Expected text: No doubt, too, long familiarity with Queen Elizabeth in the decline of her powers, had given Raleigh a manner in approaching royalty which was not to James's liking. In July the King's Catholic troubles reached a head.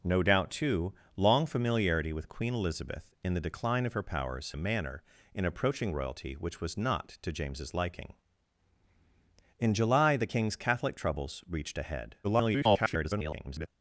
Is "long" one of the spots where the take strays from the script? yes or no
no